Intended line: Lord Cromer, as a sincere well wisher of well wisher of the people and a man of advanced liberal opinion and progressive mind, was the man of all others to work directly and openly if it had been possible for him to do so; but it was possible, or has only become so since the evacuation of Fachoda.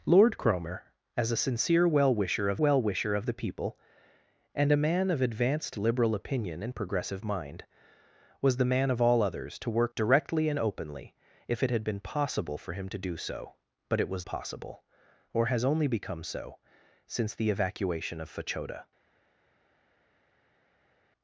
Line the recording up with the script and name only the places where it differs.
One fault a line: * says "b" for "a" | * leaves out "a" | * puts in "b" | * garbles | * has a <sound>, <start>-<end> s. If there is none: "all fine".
all fine